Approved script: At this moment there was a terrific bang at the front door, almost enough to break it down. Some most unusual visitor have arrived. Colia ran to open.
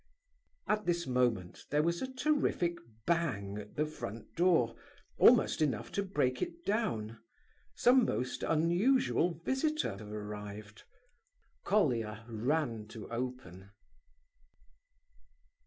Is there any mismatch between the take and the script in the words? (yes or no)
no